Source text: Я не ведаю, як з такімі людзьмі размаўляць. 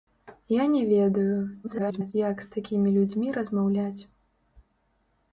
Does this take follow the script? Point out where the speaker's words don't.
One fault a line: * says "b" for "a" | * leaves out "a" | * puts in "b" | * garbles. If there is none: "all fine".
* garbles